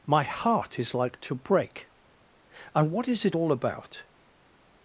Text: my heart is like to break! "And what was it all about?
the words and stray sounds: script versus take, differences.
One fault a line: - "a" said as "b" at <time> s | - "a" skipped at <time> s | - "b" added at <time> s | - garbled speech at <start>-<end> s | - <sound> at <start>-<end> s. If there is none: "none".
- "was" said as "is" at 3.1 s